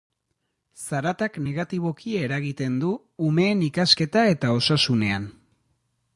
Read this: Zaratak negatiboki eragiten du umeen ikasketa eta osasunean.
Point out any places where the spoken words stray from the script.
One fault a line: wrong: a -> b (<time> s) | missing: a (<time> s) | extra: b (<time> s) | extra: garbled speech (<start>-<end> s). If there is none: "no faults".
no faults